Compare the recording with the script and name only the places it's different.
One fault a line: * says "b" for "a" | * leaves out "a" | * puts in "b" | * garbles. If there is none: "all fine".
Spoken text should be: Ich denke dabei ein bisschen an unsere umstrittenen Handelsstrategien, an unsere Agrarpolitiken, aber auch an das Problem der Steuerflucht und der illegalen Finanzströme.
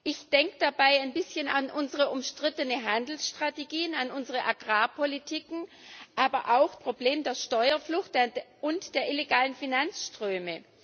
* leaves out "das"